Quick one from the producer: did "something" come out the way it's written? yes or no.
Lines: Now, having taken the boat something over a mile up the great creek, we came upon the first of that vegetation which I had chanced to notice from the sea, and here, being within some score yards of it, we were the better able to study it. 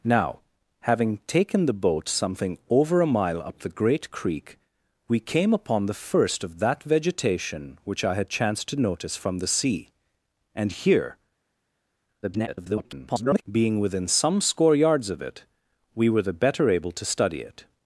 yes